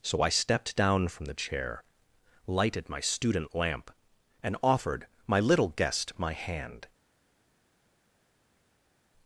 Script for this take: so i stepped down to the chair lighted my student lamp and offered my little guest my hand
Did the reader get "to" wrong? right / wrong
wrong